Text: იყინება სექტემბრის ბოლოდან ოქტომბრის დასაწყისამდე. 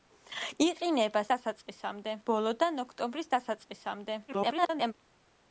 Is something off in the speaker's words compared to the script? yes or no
yes